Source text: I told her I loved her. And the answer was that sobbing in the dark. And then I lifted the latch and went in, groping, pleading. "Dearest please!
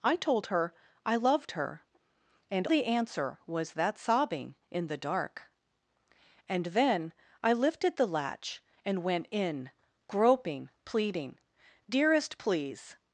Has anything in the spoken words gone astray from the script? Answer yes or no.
no